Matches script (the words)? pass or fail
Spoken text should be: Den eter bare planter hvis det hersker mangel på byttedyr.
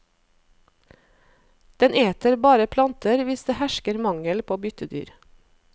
pass